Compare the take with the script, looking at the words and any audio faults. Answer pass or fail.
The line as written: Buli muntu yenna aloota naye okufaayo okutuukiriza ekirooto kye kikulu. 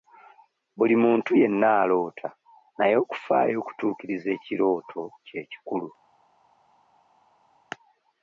pass